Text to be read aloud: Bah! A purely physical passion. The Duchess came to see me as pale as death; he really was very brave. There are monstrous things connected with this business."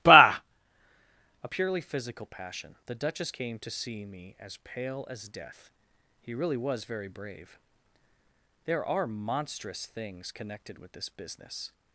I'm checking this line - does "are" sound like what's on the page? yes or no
yes